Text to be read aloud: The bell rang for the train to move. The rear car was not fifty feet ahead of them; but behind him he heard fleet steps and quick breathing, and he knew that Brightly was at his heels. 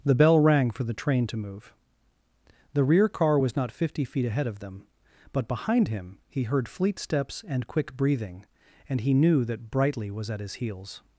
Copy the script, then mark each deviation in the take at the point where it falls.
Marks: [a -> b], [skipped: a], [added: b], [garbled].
The bell rang for the train to move. The rear car was not fifty feet ahead of them; but behind him he heard fleet steps and quick breathing, and he knew that Brightly was at his heels.